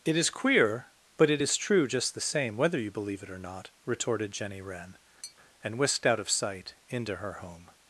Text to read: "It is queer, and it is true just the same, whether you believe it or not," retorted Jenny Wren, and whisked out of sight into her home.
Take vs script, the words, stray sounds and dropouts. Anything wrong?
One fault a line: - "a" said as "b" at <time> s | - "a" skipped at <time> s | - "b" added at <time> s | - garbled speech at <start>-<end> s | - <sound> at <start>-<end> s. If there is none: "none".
- "and" said as "but" at 1.2 s
- tap at 5.2-5.4 s